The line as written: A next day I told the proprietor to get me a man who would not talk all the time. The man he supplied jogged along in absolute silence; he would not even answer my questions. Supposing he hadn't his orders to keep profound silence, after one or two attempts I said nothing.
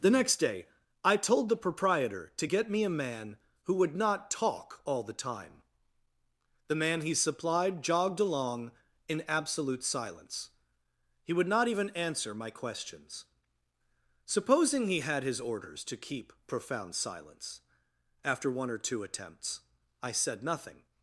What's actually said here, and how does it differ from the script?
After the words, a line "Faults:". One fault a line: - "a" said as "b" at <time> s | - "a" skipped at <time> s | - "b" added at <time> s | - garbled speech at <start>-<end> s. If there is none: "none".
The next day I told the proprietor to get me a man who would not talk all the time. The man he supplied jogged along in absolute silence; he would not even answer my questions. Supposing he had his orders to keep profound silence, after one or two attempts I said nothing.
Faults:
- "A" said as "The" at 0.0 s
- "hadn't" said as "had" at 15.0 s